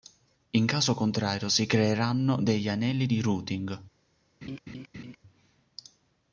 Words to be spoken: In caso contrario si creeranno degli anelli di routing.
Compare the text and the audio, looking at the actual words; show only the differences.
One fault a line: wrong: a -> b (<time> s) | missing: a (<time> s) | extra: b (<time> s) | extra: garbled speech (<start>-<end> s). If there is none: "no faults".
no faults